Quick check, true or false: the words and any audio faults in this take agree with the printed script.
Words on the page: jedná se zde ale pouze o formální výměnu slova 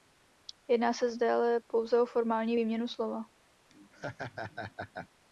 false